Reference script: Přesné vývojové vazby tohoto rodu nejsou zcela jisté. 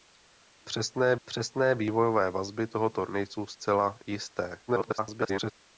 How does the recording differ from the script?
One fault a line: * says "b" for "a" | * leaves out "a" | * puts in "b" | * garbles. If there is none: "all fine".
* puts in "přesné"
* leaves out "rodu"
* garbles